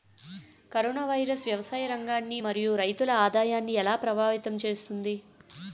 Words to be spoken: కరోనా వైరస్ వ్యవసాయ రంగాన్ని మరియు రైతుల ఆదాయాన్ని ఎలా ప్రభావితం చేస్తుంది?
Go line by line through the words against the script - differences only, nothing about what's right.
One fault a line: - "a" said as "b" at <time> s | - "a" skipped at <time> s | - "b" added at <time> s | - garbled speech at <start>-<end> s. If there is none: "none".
none